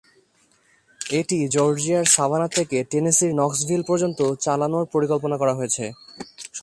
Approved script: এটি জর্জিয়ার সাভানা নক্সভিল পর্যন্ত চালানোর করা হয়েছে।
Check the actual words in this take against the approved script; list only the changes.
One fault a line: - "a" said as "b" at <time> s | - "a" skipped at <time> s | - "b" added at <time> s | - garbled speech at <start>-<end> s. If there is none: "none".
- "থেকে টেনেসির" added at 2.6 s
- "পরিকল্পনা" added at 4.9 s